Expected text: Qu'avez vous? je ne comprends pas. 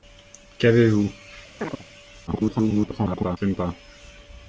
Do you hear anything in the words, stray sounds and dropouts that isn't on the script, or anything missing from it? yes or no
yes